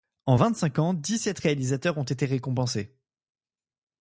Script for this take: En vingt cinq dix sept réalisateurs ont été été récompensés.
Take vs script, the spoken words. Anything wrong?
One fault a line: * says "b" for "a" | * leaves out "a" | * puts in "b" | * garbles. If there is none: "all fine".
* puts in "ans"
* leaves out "été"